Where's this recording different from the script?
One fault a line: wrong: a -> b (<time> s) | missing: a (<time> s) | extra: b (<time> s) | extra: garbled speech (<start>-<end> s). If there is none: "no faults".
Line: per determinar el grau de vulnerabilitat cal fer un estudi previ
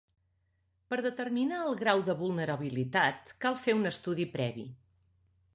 no faults